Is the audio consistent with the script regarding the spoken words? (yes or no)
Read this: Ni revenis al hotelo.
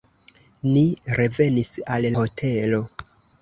yes